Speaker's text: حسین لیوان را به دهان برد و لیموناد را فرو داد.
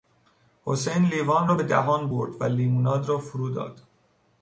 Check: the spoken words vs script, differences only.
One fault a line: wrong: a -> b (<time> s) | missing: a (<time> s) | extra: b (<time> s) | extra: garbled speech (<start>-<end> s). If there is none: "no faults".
no faults